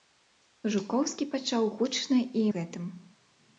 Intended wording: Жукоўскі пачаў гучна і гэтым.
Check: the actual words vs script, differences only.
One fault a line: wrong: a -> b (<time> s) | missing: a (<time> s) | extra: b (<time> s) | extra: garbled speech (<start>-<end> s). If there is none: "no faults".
no faults